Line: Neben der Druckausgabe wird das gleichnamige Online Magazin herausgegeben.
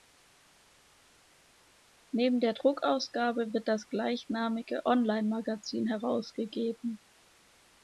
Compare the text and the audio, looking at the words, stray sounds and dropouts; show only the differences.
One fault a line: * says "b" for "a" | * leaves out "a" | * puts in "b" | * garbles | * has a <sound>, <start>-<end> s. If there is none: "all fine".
all fine